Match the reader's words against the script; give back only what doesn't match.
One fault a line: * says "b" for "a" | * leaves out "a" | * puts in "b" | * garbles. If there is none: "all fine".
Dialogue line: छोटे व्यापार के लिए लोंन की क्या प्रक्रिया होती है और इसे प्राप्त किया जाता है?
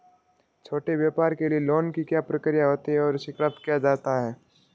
all fine